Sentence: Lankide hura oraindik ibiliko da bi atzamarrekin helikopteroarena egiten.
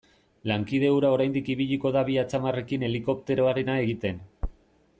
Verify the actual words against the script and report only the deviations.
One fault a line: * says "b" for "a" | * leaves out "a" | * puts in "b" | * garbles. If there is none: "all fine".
all fine